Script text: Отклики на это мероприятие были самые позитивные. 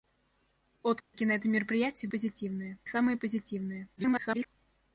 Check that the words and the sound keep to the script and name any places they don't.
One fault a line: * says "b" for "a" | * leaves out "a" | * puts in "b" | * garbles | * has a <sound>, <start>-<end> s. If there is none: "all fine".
* has a dropout, 1.0-1.1 s
* says "позитивные" for "были"
* garbles